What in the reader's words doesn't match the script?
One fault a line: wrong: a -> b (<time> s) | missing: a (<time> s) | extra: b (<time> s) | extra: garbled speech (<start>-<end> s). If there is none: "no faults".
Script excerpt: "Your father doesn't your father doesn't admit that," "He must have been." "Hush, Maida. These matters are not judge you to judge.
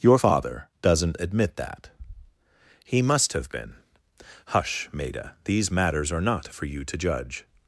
missing: your father doesn't (1.2 s)
wrong: judge -> for (6.5 s)